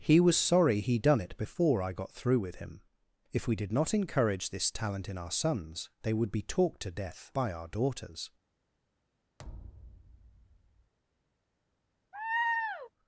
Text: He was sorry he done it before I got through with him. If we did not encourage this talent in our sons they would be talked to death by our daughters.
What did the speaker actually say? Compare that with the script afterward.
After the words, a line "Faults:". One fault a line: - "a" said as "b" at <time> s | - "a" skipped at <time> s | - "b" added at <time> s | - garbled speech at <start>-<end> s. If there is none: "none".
He was sorry he done it before I got through with him. If we did not encourage this talent in our sons they would be talked to death by our daughters.
Faults:
none